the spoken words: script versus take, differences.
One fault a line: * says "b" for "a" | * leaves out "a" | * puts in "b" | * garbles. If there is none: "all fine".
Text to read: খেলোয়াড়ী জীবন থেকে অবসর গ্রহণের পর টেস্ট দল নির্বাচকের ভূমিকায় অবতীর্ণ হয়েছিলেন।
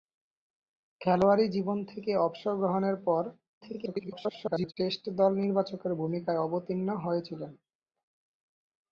* garbles